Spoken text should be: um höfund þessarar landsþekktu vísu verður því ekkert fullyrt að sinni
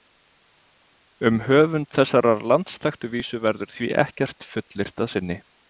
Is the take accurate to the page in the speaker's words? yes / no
yes